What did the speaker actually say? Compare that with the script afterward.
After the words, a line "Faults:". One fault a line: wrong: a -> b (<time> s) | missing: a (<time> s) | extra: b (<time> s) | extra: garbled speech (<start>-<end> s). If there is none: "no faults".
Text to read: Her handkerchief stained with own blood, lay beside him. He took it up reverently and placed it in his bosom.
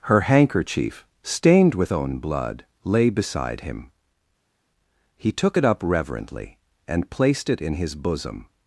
Her handkerchief stained with own blood, lay beside him. He took it up reverently and placed it in his bosom.
Faults:
no faults